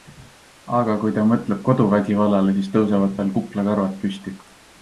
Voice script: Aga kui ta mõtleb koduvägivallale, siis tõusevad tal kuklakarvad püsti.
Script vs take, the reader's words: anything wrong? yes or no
no